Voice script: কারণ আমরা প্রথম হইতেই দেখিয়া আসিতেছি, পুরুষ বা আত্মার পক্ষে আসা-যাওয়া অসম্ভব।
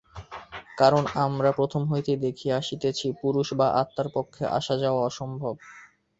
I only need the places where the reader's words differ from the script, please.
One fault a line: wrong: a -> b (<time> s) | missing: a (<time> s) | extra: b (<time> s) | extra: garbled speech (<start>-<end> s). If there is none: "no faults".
no faults